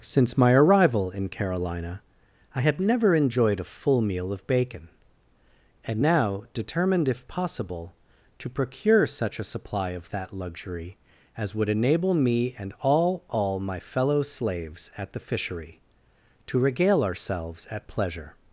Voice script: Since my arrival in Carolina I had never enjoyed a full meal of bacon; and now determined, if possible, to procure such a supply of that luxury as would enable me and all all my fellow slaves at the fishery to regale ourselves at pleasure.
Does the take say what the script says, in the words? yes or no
yes